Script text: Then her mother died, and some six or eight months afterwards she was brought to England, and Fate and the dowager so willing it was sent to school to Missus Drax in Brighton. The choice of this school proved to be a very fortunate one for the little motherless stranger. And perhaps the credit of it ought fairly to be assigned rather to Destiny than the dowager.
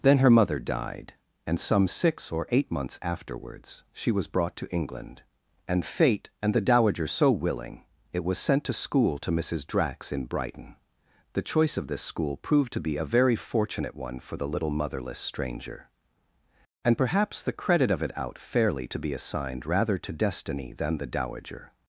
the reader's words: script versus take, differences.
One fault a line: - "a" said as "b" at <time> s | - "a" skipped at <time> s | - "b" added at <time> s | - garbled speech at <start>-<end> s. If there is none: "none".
- "ought" said as "out" at 18.2 s